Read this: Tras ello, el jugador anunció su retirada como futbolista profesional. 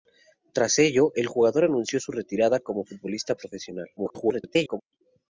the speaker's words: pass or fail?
fail